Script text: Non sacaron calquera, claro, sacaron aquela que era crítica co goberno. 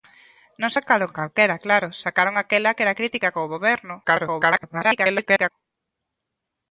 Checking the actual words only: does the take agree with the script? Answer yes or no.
no